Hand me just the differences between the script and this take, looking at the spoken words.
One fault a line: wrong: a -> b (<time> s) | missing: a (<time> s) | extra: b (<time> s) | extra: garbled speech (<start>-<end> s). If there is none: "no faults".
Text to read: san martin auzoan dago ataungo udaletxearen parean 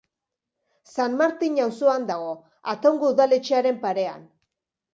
no faults